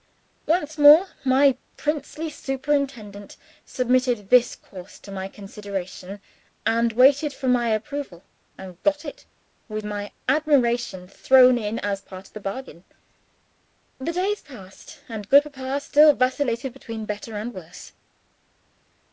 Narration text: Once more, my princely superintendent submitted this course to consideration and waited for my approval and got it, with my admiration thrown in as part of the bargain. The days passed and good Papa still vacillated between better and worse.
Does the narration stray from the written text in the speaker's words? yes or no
yes